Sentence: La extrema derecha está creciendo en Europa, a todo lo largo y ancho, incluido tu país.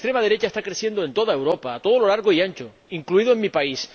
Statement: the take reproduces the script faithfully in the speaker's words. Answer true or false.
false